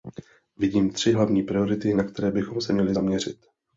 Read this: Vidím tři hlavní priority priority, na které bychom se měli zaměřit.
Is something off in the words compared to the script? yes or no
yes